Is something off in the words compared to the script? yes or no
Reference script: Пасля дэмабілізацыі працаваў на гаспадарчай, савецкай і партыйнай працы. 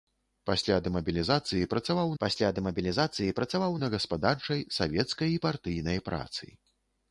yes